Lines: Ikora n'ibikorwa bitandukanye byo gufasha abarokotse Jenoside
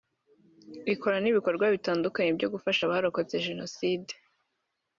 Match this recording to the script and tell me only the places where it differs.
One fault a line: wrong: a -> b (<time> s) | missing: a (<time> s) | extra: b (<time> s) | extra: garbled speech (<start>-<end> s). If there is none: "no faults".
no faults